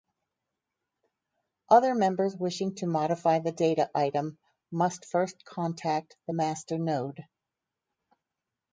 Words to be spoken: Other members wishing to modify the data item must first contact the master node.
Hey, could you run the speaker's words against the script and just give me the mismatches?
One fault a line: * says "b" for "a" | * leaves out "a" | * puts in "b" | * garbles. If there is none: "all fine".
all fine